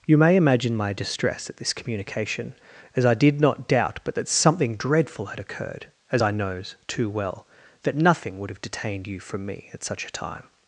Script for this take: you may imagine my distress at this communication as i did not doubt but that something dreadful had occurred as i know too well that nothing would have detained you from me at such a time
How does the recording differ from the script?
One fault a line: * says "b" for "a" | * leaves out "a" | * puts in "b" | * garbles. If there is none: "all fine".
* says "knows" for "know"